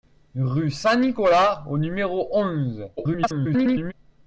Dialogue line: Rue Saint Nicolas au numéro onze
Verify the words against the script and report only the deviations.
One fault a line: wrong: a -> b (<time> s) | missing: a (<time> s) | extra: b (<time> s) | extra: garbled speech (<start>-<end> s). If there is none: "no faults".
extra: garbled speech (3.0-3.9 s)